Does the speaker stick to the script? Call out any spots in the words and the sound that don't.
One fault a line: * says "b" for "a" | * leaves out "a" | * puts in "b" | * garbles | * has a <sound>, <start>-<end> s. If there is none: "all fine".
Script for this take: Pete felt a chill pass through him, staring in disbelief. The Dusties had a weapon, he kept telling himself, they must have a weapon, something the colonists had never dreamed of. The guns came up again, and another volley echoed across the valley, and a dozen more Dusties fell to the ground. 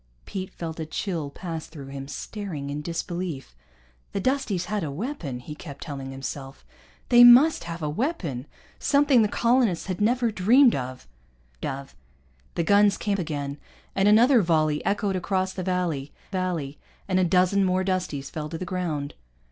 * puts in "of"
* leaves out "up"
* puts in "valley"